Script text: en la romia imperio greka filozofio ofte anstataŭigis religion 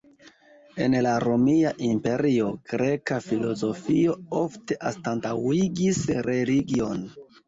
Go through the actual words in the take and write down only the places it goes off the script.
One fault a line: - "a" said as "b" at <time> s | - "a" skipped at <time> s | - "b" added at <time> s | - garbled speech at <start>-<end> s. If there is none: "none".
none